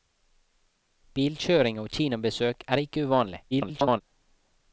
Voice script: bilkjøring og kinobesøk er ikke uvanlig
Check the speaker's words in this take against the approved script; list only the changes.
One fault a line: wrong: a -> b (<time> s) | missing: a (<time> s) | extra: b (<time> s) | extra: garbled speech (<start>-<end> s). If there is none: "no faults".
extra: garbled speech (3.5-4.0 s)